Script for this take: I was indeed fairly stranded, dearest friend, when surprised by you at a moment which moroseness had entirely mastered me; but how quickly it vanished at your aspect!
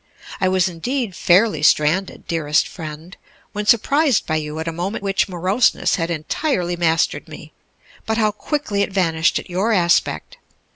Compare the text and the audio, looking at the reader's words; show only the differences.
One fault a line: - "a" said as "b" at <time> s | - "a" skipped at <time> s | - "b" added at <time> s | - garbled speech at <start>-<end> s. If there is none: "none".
none